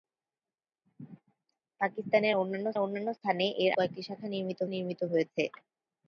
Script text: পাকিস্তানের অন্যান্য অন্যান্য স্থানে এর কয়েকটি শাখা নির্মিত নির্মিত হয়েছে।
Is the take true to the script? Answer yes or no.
yes